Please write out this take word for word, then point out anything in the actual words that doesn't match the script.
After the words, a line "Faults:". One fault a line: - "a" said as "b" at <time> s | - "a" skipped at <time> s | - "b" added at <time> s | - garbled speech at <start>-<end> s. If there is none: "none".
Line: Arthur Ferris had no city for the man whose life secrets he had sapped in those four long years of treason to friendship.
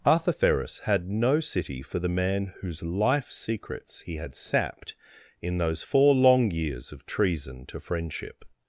Arthur Ferris had no city for the man whose life secrets he had sapped in those four long years of treason to friendship.
Faults:
none